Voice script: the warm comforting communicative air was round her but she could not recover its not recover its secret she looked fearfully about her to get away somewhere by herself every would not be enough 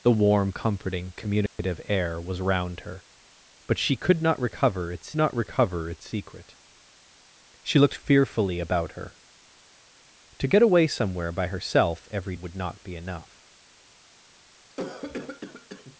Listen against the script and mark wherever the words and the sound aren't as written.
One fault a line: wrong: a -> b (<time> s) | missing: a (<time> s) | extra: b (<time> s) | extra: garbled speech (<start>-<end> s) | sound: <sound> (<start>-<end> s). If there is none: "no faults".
sound: dropout (1.5-1.6 s)
sound: cough (14.7-16.0 s)